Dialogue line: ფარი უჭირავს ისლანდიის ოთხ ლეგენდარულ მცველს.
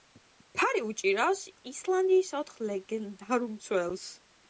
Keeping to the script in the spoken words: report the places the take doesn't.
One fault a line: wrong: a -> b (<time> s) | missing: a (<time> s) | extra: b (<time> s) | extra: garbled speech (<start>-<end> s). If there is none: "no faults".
no faults